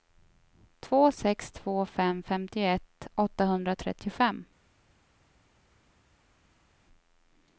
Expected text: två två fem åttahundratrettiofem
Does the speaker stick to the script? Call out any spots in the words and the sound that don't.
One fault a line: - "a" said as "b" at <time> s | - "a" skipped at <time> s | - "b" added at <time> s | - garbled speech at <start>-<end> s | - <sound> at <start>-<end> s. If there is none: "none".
- "sex" added at 1.1 s
- "femtioett" added at 2.2 s